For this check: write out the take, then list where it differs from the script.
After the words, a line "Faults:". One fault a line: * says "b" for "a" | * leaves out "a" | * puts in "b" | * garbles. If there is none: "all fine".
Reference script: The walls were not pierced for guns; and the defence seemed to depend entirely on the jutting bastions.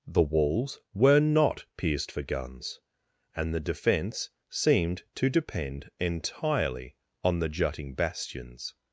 The walls were not pierced for guns; and the defence seemed to depend entirely on the jutting bastions.
Faults:
all fine